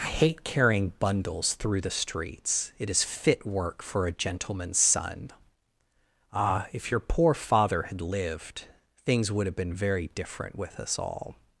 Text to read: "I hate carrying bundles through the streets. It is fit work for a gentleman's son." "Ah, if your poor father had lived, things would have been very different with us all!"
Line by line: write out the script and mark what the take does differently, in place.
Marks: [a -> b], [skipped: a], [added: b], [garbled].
"I hate carrying bundles through the streets. It is fit work for a gentleman's son." "Ah, if your poor father had lived, things would have been very different with us all!"